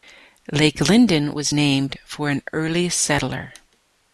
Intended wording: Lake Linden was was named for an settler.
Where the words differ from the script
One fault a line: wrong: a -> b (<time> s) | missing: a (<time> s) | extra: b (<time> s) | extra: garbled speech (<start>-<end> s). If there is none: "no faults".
missing: was (1.5 s)
extra: early (2.5 s)